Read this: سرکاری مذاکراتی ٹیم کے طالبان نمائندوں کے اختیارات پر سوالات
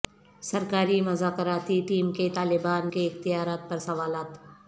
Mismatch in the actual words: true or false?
true